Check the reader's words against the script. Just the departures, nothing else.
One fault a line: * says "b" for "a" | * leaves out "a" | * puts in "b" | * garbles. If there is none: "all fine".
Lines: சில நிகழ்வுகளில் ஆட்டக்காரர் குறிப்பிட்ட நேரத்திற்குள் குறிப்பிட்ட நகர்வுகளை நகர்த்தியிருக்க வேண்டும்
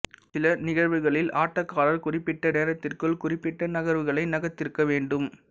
all fine